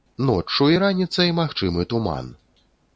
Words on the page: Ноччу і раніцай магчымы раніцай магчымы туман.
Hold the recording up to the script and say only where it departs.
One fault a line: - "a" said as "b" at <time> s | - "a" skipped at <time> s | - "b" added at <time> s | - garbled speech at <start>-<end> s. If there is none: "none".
- "раніцай магчымы" skipped at 1.8 s